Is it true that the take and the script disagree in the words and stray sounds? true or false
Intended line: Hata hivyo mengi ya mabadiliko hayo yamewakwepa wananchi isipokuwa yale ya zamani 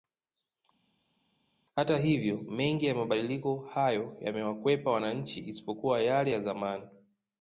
false